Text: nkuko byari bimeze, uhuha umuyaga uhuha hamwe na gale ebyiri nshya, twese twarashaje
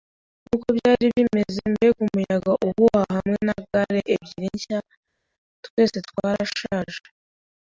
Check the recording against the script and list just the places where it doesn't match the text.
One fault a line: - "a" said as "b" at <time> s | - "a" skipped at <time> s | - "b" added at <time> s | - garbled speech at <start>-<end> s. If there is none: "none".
- "uhuha" said as "mbega" at 1.7 s